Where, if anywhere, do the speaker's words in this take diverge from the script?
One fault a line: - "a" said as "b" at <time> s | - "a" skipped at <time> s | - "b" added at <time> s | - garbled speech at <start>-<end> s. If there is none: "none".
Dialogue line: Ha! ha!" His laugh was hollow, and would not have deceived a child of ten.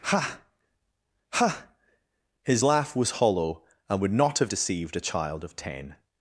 none